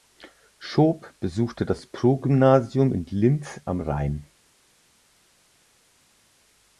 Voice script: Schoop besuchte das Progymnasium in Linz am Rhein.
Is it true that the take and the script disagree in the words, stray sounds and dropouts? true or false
false